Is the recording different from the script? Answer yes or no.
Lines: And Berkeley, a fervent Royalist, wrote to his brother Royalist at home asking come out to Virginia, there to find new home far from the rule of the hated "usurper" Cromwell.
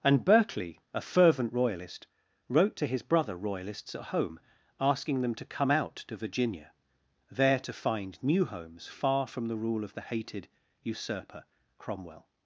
yes